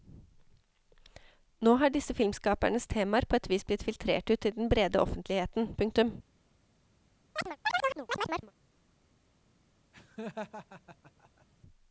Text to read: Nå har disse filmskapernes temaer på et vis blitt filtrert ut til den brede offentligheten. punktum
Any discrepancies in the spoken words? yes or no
no